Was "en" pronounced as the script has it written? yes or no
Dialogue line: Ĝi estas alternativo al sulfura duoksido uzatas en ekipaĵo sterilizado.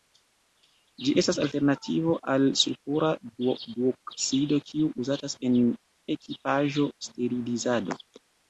yes